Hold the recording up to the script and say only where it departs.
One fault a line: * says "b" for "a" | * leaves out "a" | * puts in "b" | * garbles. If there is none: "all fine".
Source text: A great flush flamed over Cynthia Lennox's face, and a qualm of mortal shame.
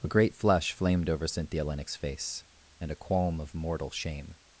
all fine